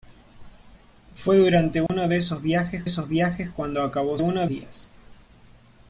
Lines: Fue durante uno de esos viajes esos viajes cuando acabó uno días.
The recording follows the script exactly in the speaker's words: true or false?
true